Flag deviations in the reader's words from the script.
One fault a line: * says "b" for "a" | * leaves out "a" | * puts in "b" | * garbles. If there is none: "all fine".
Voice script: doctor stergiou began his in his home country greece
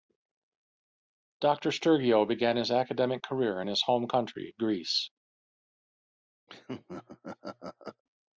* puts in "academic career"